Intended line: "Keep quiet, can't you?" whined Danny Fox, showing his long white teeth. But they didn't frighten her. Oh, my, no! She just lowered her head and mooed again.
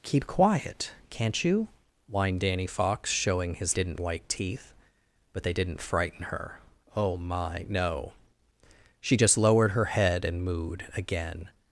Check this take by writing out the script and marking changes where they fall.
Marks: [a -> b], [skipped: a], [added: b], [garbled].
"Keep quiet, can't you?" whined Danny Fox, showing his [long -> didn't] white teeth. But they didn't frighten her. Oh, my, no! She just lowered her head and mooed again.